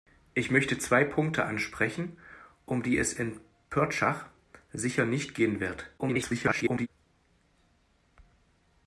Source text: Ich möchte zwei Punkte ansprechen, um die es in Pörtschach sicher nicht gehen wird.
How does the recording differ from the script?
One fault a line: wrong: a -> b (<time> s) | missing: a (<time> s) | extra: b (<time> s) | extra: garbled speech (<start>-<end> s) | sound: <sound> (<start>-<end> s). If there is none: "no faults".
extra: garbled speech (6.0-6.9 s)